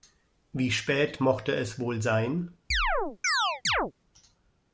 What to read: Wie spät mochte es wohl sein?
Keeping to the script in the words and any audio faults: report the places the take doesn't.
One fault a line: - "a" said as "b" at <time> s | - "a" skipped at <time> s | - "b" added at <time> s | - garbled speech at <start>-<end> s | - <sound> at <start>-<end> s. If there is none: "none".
- chirp at 2.7-3.9 s